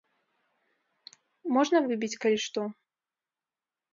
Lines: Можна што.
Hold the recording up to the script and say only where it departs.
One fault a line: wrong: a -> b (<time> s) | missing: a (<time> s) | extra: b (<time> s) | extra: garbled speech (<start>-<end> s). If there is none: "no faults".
extra: выбіць калі (1.9 s)